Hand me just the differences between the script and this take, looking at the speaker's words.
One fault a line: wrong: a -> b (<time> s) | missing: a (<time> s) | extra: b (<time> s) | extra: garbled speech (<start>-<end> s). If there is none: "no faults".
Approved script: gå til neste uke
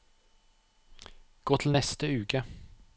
no faults